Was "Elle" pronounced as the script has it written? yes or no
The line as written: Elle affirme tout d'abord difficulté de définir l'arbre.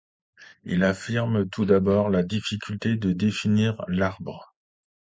no